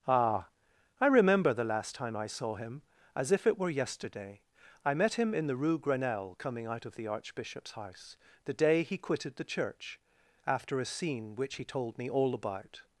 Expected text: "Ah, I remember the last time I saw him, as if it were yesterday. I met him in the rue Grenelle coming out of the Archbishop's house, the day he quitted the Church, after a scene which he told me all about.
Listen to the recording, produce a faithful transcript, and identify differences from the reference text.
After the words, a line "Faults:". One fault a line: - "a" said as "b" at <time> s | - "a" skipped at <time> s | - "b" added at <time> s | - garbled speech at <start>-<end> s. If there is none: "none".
"Ah, I remember the last time I saw him, as if it were yesterday. I met him in the rue Grenelle coming out of the Archbishop's house, the day he quitted the Church, after a scene which he told me all about.
Faults:
none